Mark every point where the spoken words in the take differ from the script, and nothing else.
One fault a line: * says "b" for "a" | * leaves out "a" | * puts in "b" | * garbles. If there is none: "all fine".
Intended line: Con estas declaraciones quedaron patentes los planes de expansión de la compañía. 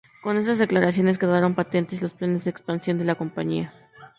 all fine